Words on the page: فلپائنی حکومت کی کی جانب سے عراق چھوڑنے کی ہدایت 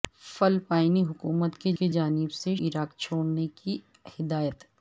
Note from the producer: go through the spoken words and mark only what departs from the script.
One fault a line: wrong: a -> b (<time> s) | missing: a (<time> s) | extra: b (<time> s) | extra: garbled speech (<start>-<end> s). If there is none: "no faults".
no faults